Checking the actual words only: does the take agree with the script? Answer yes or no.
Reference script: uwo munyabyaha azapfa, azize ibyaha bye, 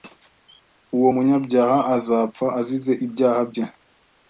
yes